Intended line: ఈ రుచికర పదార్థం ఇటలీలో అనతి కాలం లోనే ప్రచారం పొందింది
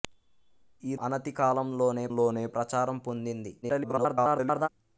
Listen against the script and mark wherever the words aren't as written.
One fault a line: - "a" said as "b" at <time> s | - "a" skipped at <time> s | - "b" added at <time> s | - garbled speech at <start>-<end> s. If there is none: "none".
- "రుచికర పదార్థం ఇటలీలో" skipped at 0.9 s
- "లోనే" added at 2.2 s
- garbled speech at 3.6-4.7 s